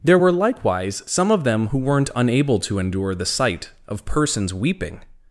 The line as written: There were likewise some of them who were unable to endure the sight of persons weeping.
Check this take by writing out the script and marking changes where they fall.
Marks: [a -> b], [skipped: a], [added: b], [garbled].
There were likewise some of them who [were -> weren't] unable to endure the sight of persons weeping.